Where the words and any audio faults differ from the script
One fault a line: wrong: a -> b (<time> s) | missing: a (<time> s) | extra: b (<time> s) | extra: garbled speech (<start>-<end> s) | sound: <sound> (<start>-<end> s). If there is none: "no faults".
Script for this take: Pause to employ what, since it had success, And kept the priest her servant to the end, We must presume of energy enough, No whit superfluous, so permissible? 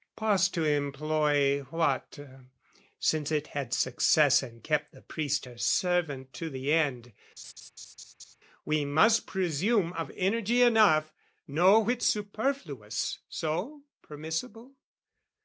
sound: laugh (7.4-8.4 s)